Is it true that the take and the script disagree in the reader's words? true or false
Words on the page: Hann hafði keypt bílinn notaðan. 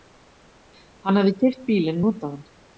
false